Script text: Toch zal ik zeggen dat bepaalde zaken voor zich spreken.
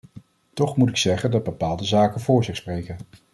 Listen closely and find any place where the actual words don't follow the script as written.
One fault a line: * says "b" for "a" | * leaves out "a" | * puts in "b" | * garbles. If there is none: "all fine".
* says "moet" for "zal"